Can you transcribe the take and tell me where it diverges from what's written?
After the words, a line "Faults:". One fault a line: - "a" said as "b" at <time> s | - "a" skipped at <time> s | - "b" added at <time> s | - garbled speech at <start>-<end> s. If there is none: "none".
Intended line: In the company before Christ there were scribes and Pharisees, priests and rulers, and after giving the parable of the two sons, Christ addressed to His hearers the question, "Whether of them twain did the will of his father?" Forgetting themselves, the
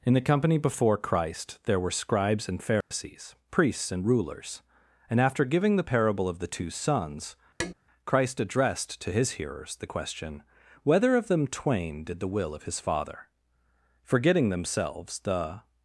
In the company before Christ there were scribes and Pharisees, priests and rulers, and after giving the parable of the two sons, Christ addressed to His hearers the question, "Whether of them twain did the will of his father?" Forgetting themselves, the
Faults:
none